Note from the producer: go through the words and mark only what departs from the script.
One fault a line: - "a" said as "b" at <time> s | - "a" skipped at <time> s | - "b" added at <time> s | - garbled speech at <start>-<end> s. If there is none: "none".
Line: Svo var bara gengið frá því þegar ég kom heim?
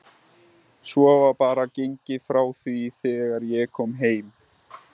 none